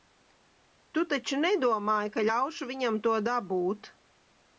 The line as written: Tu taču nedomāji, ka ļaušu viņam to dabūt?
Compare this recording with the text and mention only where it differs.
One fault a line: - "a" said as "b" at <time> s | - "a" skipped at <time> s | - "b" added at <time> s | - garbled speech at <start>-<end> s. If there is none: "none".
none